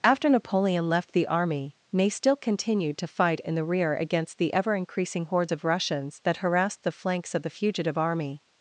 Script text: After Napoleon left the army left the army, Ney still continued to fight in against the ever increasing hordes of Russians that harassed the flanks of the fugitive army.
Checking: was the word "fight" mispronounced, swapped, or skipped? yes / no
no